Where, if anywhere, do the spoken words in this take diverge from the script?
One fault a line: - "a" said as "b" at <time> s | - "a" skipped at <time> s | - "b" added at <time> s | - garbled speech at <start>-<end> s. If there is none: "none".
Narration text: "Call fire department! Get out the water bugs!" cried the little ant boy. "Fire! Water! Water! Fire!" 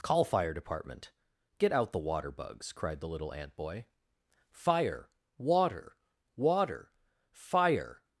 none